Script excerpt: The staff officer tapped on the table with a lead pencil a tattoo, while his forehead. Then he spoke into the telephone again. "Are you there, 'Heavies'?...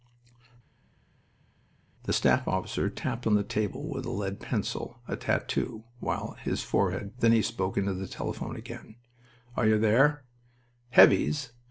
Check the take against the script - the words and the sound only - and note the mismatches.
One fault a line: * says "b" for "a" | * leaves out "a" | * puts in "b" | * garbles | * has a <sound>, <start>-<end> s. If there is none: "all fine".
all fine